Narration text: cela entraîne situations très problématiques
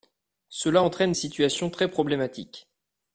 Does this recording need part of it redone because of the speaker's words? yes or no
no